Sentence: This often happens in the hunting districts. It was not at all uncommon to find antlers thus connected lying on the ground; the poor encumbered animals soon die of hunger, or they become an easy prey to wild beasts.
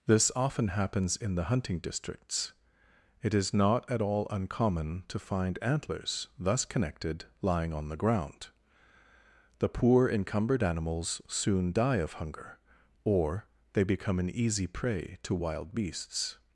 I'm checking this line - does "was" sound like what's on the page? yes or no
no